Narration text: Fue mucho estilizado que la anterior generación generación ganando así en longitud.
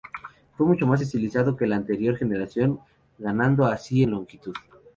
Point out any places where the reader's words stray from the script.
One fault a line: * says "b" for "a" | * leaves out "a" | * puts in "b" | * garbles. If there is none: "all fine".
* puts in "más"
* leaves out "generación"